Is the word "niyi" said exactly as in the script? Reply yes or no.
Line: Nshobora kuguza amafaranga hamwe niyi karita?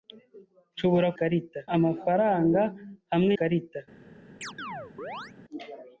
no